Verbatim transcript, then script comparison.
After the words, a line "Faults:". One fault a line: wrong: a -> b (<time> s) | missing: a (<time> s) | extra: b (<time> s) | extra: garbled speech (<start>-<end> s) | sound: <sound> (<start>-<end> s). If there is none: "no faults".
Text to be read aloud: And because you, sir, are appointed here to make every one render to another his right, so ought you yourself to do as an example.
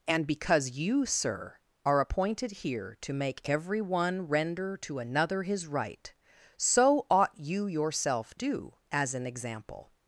And because you, sir, are appointed here to make every one render to another his right, so ought you yourself do as an example.
Faults:
missing: to (8.3 s)